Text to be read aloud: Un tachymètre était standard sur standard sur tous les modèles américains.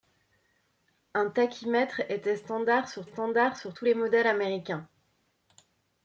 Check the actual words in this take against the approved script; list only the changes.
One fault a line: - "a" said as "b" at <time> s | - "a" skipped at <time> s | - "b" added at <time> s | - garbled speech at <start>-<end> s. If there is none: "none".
none